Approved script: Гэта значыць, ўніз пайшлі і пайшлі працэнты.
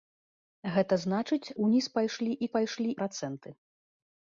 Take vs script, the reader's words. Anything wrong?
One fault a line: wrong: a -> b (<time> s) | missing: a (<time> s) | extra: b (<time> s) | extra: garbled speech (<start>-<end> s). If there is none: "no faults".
no faults